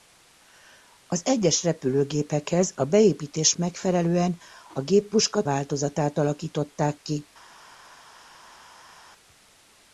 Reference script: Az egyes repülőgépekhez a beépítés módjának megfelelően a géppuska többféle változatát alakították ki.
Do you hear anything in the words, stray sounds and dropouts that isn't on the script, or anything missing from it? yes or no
yes